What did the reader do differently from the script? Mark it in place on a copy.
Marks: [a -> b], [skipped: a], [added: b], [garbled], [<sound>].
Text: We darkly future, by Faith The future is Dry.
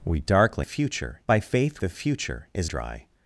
We darkly future, by Faith The future is Dry.